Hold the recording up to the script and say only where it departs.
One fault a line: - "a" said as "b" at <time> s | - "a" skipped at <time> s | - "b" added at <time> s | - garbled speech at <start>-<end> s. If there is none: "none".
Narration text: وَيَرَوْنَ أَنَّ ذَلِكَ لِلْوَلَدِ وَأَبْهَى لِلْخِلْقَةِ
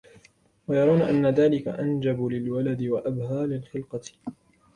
- "أَنْجَبُ" added at 1.7 s